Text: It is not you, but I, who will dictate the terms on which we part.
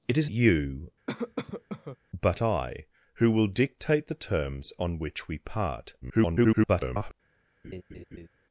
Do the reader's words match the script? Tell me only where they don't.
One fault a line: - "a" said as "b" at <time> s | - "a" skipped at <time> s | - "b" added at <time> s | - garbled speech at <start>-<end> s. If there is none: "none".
- "not" skipped at 0.3 s
- garbled speech at 6.0-7.1 s